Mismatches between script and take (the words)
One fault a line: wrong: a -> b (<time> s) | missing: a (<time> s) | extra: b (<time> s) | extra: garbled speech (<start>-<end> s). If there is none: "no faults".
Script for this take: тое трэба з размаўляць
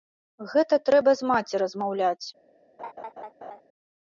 wrong: тое -> гэта (0.5 s)
extra: маці (1.3 s)